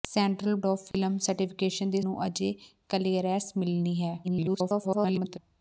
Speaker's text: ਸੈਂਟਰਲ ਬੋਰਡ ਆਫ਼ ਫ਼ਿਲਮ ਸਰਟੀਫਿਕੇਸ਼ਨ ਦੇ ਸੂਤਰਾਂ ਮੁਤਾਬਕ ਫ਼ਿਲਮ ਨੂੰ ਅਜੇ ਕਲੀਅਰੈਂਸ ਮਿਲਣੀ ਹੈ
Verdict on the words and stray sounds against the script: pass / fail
fail